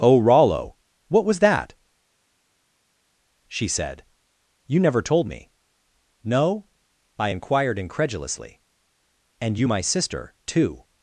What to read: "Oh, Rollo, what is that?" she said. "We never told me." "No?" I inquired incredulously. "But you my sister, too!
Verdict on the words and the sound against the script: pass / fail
fail